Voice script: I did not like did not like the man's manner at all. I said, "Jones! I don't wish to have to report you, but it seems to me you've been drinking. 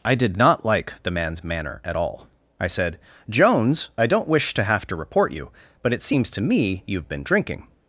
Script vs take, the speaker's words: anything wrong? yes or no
yes